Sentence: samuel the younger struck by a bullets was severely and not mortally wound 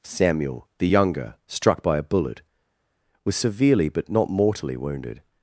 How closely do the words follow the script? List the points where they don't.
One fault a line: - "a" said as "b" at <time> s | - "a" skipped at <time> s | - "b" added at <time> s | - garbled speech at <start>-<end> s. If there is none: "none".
- "bullets" said as "bullet" at 2.0 s
- "and" said as "but" at 3.9 s
- "wound" said as "wounded" at 4.8 s